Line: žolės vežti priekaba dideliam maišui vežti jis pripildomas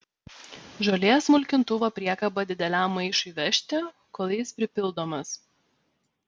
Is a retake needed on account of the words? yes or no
yes